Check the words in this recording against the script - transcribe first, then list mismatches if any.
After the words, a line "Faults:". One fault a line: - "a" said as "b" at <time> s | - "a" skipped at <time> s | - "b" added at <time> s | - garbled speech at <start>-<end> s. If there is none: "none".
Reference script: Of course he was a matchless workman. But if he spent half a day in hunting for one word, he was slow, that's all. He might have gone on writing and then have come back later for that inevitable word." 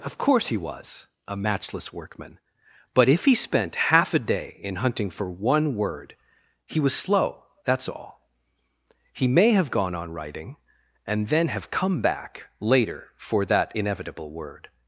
Of course he was a matchless workman. But if he spent half a day in hunting for one word, he was slow, that's all. He may have gone on writing and then have come back later for that inevitable word."
Faults:
- "might" said as "may" at 9.3 s